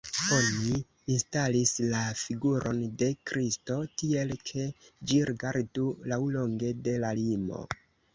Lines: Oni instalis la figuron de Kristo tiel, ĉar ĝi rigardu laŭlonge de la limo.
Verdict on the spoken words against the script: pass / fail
fail